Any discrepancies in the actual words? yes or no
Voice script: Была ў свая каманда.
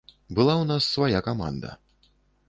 yes